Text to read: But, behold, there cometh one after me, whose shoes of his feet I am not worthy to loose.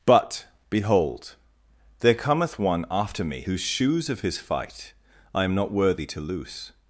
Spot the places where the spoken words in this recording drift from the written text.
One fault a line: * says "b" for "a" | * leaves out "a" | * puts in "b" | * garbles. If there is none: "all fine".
* says "fight" for "feet"